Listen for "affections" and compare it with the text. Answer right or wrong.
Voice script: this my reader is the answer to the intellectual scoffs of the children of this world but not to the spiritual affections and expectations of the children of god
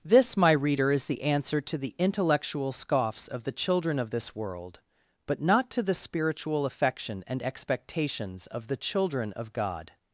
wrong